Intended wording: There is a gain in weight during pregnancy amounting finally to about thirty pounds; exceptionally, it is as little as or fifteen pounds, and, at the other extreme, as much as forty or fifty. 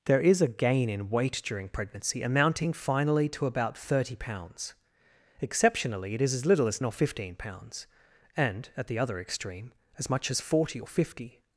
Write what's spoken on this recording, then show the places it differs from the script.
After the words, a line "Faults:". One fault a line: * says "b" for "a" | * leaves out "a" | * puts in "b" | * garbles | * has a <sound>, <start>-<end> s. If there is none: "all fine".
There is a gain in weight during pregnancy amounting finally to about thirty pounds; exceptionally, it is as little as or fifteen pounds, and, at the other extreme, as much as forty or fifty.
Faults:
all fine